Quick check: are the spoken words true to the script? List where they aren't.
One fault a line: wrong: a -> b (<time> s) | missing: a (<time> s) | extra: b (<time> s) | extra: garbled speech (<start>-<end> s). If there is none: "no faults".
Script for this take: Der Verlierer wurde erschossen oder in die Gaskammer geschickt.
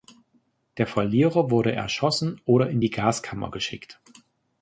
no faults